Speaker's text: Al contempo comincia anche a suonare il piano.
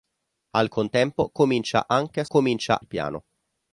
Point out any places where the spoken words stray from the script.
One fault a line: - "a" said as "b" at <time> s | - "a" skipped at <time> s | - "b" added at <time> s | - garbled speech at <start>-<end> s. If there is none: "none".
- "suonare" said as "comincia" at 2.3 s